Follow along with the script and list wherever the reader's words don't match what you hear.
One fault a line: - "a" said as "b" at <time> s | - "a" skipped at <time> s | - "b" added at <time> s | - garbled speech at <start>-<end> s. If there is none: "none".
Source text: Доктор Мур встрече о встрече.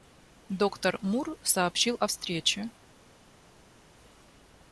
- "встрече" said as "сообщил" at 1.4 s